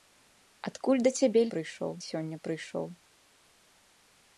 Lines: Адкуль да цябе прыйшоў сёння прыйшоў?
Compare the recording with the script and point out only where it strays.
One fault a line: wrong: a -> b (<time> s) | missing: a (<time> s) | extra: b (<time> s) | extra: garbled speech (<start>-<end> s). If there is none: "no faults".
no faults